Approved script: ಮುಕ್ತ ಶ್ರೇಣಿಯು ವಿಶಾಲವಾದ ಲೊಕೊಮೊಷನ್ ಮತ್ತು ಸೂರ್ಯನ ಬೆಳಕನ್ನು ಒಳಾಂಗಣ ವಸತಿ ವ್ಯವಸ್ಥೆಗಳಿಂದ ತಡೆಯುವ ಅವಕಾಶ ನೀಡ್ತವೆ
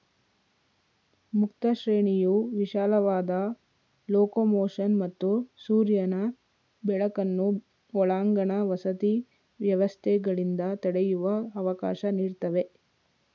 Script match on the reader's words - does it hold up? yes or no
yes